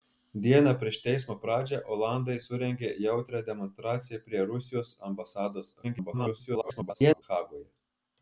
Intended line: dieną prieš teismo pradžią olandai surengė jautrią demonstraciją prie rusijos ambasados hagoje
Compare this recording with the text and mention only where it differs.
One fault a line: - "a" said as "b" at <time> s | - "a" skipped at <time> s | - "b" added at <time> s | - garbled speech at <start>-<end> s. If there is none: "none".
- garbled speech at 5.8-7.2 s